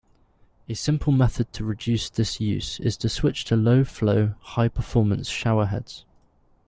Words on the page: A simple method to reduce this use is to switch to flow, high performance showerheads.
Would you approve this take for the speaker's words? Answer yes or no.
no